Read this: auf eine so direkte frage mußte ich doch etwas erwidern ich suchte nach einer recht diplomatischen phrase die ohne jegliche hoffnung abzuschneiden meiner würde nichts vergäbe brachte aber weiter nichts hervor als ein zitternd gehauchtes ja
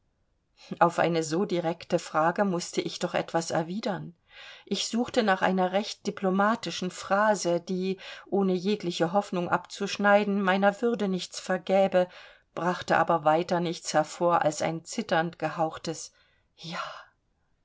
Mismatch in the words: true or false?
false